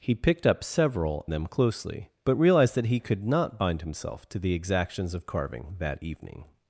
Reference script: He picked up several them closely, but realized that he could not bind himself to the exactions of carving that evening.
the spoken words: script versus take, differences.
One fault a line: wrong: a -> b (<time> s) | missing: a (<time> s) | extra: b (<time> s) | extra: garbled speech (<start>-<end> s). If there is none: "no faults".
no faults